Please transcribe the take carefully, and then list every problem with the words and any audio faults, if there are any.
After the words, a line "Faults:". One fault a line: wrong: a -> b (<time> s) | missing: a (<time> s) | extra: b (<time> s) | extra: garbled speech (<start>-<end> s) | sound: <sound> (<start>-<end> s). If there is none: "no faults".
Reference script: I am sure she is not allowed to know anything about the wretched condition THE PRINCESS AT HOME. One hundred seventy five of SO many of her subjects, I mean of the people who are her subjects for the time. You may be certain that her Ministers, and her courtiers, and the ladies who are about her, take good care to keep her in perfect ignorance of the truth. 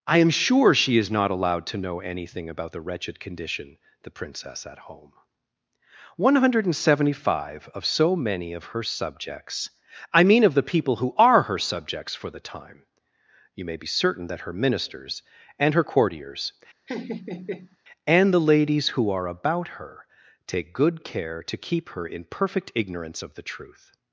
I am sure she is not allowed to know anything about the wretched condition THE PRINCESS AT HOME. One hundred seventy five of SO many of her subjects, I mean of the people who are her subjects for the time. You may be certain that her Ministers, and her courtiers, and the ladies who are about her, take good care to keep her in perfect ignorance of the truth.
Faults:
sound: laugh (16.9-17.8 s)